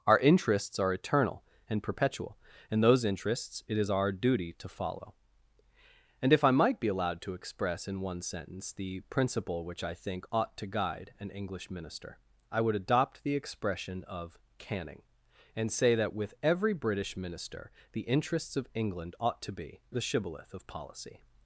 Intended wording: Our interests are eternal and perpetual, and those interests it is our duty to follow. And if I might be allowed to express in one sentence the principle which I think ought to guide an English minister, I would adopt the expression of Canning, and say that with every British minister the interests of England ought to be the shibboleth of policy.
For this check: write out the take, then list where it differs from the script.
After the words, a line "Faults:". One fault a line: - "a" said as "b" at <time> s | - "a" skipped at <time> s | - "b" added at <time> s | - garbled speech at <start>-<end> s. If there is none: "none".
Our interests are eternal and perpetual, and those interests it is our duty to follow. And if I might be allowed to express in one sentence the principle which I think ought to guide an English minister, I would adopt the expression of Canning, and say that with every British minister the interests of England ought to be the shibboleth of policy.
Faults:
none